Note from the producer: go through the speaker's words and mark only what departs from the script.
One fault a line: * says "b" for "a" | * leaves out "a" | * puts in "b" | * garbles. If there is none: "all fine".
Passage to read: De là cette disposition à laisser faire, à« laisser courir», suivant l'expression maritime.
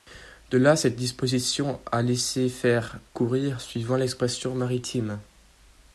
* leaves out "à laisser"